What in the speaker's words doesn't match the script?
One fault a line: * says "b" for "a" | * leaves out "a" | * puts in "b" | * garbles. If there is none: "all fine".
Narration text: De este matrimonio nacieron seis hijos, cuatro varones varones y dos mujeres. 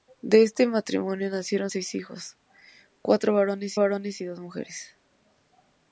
all fine